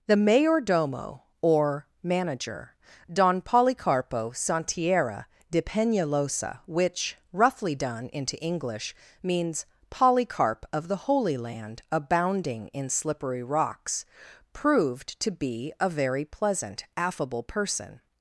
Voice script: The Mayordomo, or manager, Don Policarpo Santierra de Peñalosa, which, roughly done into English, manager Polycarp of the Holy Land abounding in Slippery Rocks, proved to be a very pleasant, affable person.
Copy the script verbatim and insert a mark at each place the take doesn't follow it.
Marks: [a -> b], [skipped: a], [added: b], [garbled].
The Mayordomo, or manager, Don Policarpo Santierra de Peñalosa, which, roughly done into English, [manager -> means] Polycarp of the Holy Land abounding in Slippery Rocks, proved to be a very pleasant, affable person.